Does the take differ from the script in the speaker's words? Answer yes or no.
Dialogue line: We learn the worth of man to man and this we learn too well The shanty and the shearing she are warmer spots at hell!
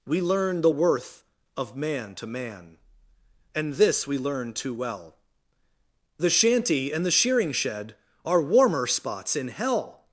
yes